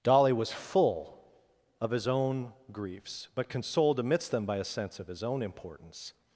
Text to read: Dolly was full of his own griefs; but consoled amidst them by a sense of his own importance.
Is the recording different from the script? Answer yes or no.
no